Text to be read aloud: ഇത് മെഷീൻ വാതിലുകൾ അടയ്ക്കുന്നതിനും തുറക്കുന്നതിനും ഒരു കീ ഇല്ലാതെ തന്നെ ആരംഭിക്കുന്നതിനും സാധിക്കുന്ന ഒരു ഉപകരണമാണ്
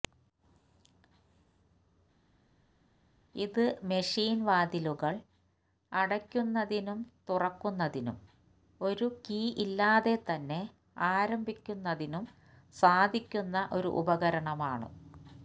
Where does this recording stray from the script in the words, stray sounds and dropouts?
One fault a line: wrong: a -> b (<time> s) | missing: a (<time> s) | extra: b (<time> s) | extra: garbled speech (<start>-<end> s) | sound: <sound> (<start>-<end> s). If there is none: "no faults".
no faults